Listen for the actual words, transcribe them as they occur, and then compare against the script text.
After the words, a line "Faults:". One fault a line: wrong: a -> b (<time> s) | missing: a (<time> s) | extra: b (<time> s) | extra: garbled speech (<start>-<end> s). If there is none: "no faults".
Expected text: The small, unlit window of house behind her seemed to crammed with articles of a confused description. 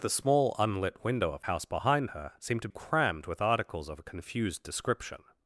The small, unlit window of house behind her seemed to crammed with articles of a confused description.
Faults:
no faults